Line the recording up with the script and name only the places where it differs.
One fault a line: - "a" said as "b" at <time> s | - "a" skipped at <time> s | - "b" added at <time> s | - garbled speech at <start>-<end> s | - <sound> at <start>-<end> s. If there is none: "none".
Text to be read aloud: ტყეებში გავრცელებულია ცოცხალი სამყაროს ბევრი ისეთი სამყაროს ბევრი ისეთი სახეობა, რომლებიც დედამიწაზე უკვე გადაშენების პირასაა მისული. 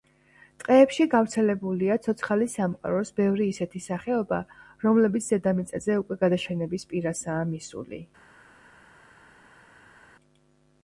- "სამყაროს ბევრი ისეთი" skipped at 3.8 s